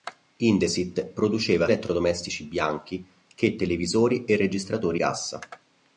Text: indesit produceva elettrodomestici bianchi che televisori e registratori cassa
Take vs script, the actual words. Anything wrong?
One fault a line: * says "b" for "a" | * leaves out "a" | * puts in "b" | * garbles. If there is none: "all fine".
all fine